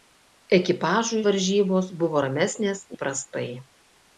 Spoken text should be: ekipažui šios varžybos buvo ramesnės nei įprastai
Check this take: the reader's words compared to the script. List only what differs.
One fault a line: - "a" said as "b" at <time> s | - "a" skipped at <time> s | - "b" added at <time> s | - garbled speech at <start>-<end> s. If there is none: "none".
- "šios" skipped at 1.2 s
- "nei" skipped at 2.8 s